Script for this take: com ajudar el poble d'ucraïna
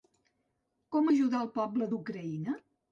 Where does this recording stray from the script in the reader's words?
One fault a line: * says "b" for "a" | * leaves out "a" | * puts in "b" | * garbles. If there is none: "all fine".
all fine